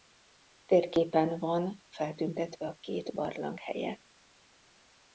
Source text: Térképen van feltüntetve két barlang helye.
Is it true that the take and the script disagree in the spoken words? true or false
true